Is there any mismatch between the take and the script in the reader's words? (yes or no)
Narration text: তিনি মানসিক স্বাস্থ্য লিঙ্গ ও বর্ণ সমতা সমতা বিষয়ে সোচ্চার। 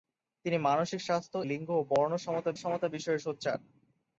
no